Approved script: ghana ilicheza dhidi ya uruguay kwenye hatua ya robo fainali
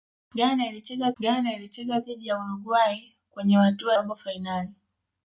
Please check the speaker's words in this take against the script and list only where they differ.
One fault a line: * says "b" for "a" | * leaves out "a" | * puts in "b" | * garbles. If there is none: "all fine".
* puts in "ghana ilicheza"
* leaves out "ya"